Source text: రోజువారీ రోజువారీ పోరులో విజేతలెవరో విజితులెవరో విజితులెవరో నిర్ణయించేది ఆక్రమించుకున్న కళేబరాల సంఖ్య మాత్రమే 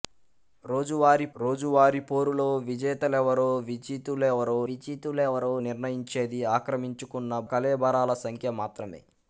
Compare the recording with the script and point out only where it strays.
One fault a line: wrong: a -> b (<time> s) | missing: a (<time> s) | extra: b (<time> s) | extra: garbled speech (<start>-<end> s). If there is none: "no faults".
no faults